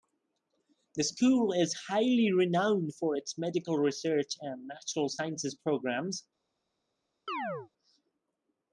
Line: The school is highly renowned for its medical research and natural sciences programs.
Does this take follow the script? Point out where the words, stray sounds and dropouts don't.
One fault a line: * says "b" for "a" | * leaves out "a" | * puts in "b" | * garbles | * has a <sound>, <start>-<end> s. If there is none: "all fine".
* has a chirp, 7.3-7.7 s